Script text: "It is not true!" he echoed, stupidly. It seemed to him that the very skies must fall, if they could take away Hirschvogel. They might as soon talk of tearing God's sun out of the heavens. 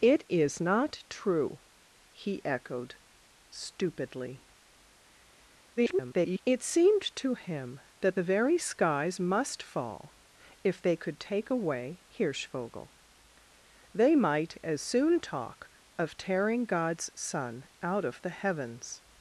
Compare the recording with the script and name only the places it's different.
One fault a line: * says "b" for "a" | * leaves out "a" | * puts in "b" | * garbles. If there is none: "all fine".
* garbles